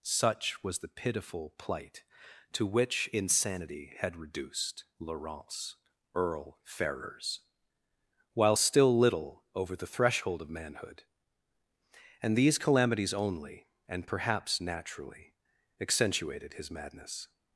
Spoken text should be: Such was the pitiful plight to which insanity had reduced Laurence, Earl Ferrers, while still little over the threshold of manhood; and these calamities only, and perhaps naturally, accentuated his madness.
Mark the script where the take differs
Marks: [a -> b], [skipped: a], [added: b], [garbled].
Such was the pitiful plight to which insanity had reduced Laurence, Earl Ferrers, while still little over the threshold of manhood; and these calamities only, and perhaps naturally, accentuated his madness.